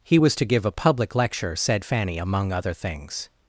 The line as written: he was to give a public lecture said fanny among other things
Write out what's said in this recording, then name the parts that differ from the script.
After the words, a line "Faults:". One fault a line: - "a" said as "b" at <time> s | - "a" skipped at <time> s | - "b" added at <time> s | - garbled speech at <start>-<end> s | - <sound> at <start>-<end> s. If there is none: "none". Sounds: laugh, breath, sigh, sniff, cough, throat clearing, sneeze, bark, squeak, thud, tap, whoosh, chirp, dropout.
he was to give a public lecture said fanny among other things
Faults:
none